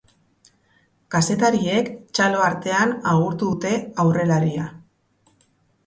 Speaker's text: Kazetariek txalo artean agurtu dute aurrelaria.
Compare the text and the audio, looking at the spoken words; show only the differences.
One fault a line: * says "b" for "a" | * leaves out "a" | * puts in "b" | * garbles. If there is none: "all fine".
all fine